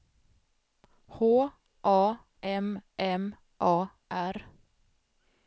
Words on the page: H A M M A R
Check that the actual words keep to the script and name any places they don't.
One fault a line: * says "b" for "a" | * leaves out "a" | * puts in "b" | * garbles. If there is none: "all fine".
all fine